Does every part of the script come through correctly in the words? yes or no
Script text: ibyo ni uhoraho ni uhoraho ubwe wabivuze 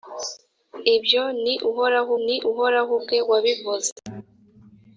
yes